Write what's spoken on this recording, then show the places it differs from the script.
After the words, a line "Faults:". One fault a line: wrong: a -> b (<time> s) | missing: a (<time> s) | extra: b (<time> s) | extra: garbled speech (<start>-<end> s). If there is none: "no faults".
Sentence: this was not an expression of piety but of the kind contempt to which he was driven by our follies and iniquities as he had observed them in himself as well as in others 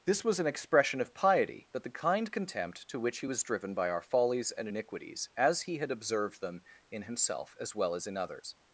this was an expression of piety but the kind contempt to which he was driven by our follies and iniquities as he had observed them in himself as well as in others
Faults:
missing: not (0.4 s)
missing: of (1.8 s)